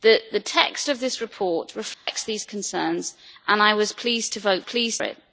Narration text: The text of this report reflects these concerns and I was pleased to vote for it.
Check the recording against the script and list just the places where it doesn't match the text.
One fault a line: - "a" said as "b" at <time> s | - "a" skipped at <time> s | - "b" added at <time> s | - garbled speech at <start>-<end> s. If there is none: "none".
- "for" said as "pleased" at 4.6 s